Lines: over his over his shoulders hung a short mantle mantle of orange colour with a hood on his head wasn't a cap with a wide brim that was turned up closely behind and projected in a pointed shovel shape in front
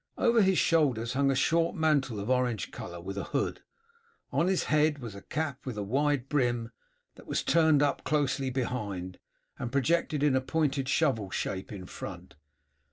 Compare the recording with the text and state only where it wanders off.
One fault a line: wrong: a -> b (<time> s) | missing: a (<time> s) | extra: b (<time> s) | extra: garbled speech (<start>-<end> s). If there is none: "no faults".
missing: over his (0.6 s)
missing: mantle (2.2 s)
wrong: wasn't -> was (5.0 s)